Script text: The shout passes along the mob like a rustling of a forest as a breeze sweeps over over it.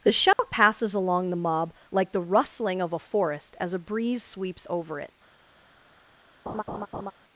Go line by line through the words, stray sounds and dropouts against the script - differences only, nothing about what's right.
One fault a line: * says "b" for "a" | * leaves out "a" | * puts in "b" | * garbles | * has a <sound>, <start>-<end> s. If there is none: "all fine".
* has a dropout, 0.3-0.4 s
* says "the" for "a"
* leaves out "over"
* has a laugh, 6.5-7.1 s